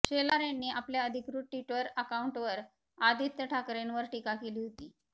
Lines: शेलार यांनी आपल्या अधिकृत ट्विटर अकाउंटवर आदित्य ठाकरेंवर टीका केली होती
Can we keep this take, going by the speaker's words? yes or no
yes